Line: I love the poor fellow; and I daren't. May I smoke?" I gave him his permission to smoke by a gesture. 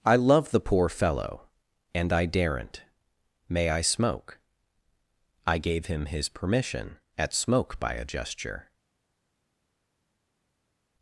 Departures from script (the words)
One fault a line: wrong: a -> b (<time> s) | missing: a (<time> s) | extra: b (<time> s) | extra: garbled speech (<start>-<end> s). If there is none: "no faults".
wrong: to -> at (7.2 s)